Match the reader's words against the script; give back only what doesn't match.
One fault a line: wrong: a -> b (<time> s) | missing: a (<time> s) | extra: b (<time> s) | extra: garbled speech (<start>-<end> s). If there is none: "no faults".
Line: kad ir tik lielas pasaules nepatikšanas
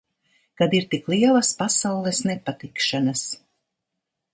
no faults